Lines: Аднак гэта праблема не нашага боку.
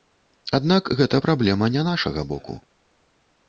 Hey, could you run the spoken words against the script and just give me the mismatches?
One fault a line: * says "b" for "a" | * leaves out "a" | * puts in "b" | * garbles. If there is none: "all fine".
all fine